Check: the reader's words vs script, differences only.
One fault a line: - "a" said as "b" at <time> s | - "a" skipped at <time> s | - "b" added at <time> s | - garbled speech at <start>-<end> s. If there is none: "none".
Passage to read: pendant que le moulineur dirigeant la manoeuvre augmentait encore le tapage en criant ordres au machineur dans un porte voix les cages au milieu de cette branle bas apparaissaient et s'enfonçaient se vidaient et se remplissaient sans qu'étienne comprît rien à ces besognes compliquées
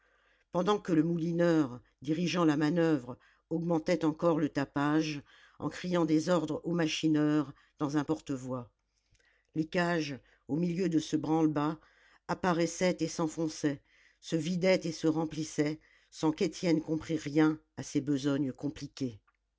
- "des" added at 6.0 s
- "cette" said as "ce" at 11.0 s